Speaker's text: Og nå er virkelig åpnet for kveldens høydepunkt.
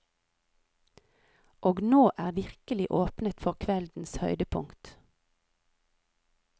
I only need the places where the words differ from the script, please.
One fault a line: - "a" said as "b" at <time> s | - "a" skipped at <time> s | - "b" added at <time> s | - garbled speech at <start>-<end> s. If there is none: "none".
none